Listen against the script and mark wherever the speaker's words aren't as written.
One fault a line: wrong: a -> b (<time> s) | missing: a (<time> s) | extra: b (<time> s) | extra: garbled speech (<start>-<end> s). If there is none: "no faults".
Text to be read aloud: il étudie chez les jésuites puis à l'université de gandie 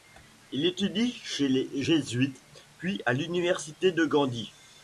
no faults